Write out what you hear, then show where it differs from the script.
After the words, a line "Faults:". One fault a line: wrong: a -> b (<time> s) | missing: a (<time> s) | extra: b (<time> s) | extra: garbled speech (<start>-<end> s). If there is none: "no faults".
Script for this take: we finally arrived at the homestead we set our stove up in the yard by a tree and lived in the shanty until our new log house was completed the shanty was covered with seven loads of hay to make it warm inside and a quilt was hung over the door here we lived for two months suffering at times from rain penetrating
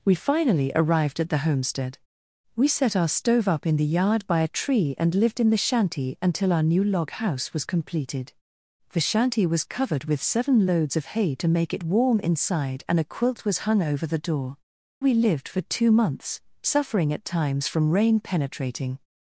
we finally arrived at the homestead we set our stove up in the yard by a tree and lived in the shanty until our new log house was completed the shanty was covered with seven loads of hay to make it warm inside and a quilt was hung over the door we lived for two months suffering at times from rain penetrating
Faults:
missing: here (14.6 s)